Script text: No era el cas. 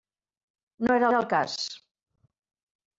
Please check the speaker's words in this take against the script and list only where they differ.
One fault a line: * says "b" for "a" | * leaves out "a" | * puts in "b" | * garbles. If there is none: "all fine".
* puts in "era"